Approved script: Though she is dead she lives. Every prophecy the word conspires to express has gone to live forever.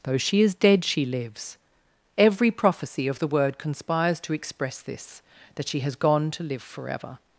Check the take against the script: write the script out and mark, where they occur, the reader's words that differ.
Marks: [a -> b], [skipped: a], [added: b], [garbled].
Though she is dead she lives. Every prophecy [added: of] the word conspires to express [added: this that she] has gone to live forever.